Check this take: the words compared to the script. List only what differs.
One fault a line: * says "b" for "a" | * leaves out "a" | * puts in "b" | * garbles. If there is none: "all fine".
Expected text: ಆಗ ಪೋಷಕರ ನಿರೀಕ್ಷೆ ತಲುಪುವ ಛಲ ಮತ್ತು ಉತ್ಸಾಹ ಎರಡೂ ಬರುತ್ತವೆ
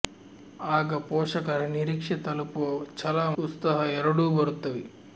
* leaves out "ಮತ್ತು"